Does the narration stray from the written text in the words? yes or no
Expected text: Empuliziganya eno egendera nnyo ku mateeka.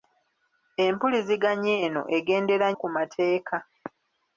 yes